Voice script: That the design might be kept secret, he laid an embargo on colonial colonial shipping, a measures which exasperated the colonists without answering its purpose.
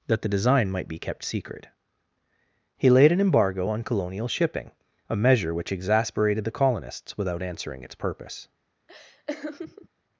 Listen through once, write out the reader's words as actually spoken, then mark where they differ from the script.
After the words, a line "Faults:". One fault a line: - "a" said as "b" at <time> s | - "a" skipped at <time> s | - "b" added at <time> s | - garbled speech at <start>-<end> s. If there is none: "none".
That the design might be kept secret, he laid an embargo on colonial shipping, a measure which exasperated the colonists without answering its purpose.
Faults:
- "colonial" skipped at 4.3 s
- "measures" said as "measure" at 5.2 s